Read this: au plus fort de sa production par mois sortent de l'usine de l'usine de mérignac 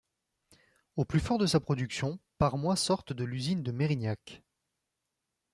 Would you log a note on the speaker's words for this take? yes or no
yes